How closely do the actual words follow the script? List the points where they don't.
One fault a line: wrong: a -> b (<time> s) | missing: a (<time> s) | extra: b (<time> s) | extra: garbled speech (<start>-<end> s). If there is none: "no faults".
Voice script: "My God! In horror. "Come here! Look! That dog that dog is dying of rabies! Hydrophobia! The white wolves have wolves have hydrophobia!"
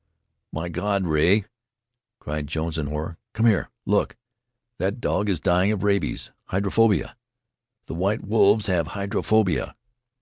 extra: Rea cried Jones (1.1 s)
missing: that dog (5.3 s)
missing: wolves have (8.9 s)